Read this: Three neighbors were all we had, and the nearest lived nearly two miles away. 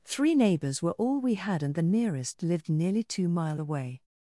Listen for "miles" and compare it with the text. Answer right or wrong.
wrong